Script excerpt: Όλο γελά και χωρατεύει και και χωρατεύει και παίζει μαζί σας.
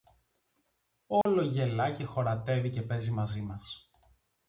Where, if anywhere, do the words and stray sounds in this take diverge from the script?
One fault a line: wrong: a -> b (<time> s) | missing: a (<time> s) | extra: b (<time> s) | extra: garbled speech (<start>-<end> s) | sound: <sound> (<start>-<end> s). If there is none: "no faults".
sound: dropout (1.2-1.3 s)
missing: και χωρατεύει και (2.8 s)
wrong: σας -> μας (3.4 s)